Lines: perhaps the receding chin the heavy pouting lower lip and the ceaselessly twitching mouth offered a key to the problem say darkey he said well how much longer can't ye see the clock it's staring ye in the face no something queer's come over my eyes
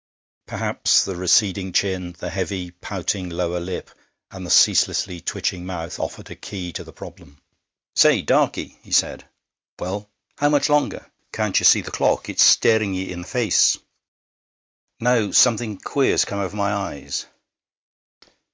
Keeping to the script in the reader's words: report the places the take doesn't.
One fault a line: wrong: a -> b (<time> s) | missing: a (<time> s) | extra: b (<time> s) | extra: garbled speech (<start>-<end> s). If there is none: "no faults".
no faults